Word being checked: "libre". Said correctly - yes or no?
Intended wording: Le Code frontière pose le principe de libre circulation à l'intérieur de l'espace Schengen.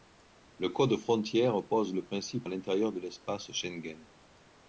no